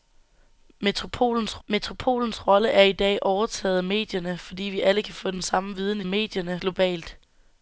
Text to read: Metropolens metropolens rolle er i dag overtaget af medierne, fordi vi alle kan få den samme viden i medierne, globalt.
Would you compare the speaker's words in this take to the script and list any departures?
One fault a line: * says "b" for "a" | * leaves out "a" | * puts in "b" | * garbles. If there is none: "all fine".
all fine